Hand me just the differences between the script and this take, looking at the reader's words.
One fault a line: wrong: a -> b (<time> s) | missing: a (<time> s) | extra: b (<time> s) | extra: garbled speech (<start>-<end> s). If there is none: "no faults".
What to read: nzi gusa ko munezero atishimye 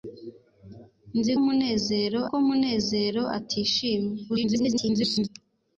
wrong: gusa -> munezero (1.4 s)
extra: garbled speech (4.3-5.3 s)